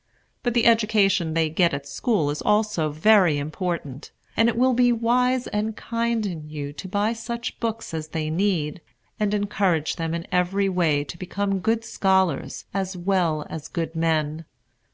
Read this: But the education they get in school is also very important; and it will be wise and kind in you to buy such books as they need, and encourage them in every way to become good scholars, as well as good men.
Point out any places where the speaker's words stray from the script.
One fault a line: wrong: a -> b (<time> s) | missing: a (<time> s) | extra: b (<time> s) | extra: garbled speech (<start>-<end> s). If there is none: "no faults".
wrong: in -> at (1.8 s)